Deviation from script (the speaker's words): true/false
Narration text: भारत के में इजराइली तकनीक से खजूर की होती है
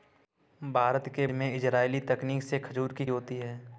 false